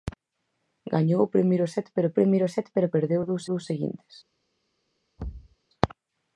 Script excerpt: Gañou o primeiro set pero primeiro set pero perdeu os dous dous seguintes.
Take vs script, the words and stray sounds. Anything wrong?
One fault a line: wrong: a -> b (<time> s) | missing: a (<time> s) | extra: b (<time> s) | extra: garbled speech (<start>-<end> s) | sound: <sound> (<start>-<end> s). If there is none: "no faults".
sound: thud (5.2-5.6 s)